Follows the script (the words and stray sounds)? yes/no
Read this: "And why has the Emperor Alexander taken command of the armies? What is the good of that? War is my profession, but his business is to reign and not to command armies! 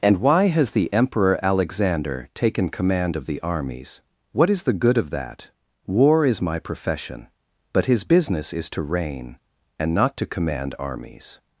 yes